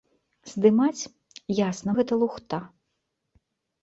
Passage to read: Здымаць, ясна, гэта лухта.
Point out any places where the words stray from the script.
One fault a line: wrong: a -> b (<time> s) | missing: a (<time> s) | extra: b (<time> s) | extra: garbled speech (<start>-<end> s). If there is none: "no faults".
no faults